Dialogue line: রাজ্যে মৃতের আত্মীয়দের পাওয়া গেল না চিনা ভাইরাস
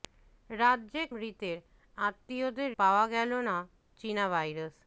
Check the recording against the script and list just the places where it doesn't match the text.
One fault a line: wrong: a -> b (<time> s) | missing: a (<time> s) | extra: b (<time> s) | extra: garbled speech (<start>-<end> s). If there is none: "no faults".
no faults